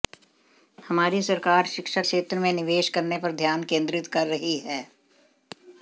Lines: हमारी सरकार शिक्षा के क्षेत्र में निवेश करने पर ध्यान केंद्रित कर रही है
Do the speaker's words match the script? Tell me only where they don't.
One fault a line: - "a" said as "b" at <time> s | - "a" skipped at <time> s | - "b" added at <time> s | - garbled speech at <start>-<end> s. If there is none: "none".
- "के" skipped at 2.0 s